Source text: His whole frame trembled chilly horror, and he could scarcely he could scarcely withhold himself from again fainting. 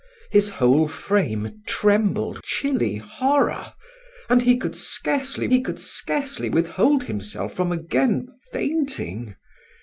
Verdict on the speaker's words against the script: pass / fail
pass